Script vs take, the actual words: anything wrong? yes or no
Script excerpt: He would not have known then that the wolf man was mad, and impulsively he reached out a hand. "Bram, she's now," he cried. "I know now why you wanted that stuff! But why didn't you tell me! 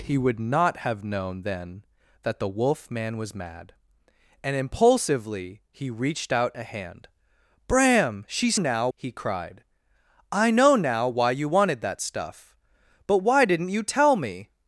no